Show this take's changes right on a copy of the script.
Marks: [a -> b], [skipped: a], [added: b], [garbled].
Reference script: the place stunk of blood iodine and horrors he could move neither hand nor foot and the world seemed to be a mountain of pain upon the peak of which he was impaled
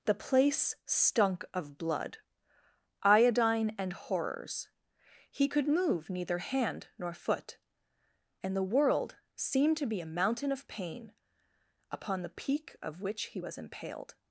the place stunk of blood iodine and horrors he could move neither hand nor foot and the world seemed to be a mountain of pain upon the peak of which he was impaled